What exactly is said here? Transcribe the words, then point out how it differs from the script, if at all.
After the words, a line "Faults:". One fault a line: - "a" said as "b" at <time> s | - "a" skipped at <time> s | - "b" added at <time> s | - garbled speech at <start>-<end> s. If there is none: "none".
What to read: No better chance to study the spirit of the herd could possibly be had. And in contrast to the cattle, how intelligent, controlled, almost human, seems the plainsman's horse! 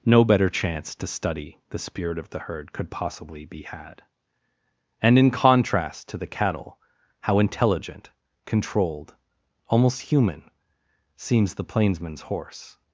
No better chance to study the spirit of the herd could possibly be had. And in contrast to the cattle, how intelligent, controlled, almost human, seems the plainsman's horse!
Faults:
none